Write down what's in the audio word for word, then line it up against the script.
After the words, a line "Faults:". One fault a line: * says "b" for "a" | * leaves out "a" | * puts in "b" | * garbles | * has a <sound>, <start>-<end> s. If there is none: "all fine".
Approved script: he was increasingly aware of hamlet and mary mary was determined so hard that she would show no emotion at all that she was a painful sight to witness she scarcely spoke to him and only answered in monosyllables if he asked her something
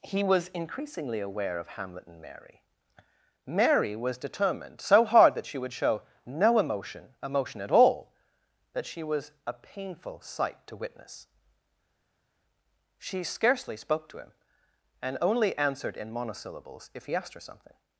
he was increasingly aware of hamlet and mary mary was determined so hard that she would show no emotion emotion at all that she was a painful sight to witness she scarcely spoke to him and only answered in monosyllables if he asked her something
Faults:
* puts in "emotion"